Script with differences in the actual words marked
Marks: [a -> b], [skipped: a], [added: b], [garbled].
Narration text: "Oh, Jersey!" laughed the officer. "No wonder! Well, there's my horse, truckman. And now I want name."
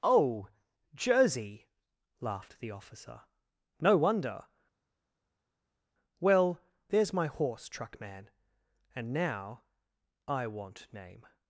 "Oh, Jersey!" laughed the officer. "No wonder! Well, there's my horse, truckman. And now I want name."